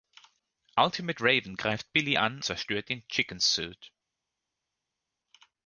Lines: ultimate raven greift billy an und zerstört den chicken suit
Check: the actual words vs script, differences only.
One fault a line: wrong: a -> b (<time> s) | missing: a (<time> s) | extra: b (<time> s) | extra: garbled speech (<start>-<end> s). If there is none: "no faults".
missing: und (2.4 s)